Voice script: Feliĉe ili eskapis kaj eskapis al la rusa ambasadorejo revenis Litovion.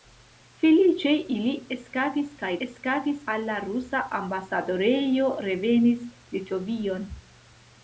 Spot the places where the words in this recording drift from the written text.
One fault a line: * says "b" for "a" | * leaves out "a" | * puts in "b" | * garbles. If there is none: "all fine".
all fine